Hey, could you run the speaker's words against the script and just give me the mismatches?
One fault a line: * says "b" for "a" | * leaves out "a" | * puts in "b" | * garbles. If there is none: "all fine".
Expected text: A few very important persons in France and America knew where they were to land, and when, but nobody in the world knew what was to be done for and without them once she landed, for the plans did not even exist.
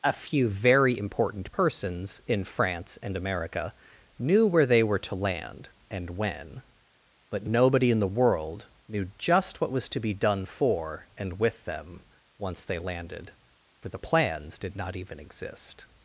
* puts in "just"
* says "with" for "without"
* says "they" for "she"